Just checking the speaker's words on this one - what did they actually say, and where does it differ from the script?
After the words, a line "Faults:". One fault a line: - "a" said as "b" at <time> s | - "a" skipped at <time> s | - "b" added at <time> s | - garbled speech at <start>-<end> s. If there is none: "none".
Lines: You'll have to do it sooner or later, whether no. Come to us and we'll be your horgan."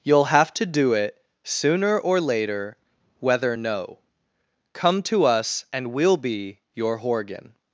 You'll have to do it sooner or later, whether no. Come to us and we'll be your horgan."
Faults:
none